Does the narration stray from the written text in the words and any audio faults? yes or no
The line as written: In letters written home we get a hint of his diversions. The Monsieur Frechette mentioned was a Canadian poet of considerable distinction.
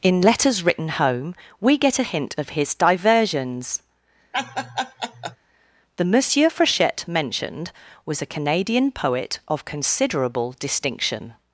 yes